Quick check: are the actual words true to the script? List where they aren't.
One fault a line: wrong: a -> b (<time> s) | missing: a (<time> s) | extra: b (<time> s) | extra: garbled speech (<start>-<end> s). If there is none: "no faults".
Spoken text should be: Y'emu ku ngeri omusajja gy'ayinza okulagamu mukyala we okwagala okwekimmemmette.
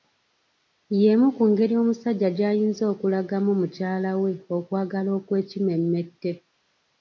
no faults